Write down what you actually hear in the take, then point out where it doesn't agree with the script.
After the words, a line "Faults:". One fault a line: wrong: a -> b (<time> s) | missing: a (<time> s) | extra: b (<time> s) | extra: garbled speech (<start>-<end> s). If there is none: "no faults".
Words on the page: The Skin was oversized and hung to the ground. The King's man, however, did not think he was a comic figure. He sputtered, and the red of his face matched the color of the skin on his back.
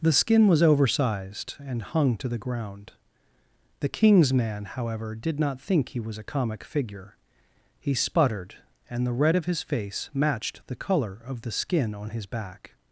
The Skin was oversized and hung to the ground. The King's man, however, did not think he was a comic figure. He sputtered, and the red of his face matched the color of the skin on his back.
Faults:
no faults